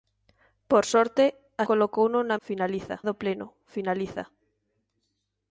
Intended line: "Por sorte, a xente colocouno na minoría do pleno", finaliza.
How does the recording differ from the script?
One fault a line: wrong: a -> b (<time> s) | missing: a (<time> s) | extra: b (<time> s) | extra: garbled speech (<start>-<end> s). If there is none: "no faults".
missing: xente (1.6 s)
wrong: minoría -> finaliza (2.5 s)